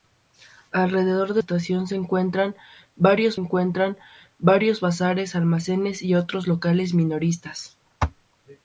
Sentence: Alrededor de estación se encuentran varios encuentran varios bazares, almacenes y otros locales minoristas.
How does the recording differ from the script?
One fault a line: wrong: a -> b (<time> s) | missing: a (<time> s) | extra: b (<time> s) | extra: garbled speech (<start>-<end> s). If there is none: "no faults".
no faults